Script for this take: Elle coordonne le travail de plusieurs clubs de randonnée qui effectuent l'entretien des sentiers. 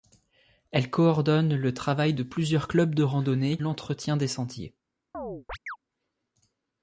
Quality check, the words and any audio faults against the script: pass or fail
fail